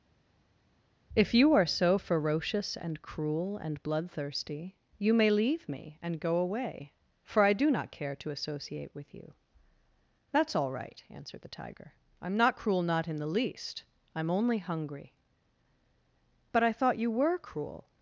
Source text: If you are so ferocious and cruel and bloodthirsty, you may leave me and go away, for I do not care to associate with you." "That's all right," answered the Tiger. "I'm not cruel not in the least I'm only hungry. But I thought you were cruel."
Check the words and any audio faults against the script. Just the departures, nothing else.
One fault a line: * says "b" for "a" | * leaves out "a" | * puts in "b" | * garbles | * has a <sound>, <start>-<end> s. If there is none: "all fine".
all fine